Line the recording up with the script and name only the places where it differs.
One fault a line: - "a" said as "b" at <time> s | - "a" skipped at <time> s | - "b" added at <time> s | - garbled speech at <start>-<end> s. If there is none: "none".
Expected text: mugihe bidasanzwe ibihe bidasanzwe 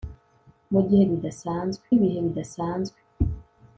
none